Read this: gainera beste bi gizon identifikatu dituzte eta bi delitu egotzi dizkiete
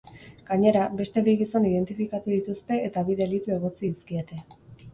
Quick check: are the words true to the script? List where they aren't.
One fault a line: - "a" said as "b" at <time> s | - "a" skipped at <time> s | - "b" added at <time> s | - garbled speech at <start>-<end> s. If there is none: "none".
none